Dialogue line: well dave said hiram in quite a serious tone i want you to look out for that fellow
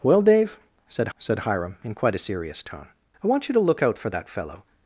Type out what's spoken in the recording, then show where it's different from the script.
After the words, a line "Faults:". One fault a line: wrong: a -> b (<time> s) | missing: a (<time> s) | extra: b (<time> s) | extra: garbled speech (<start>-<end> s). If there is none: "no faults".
well dave said said hiram in quite a serious tone i want you to look out for that fellow
Faults:
extra: said (1.2 s)